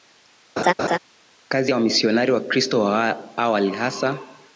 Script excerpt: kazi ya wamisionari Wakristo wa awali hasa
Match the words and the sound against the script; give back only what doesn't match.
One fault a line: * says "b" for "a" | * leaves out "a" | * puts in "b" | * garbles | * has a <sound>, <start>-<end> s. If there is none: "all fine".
* has a laugh, 0.6-1.0 s